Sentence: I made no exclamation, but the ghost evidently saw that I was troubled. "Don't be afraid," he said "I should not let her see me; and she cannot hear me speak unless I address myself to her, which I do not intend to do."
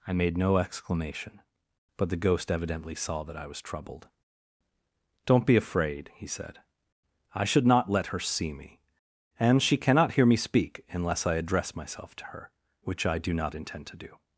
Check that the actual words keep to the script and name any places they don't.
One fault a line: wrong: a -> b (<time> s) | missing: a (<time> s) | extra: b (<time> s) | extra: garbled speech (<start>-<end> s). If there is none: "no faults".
no faults